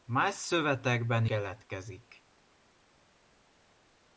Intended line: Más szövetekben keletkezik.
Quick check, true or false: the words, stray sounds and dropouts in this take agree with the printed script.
true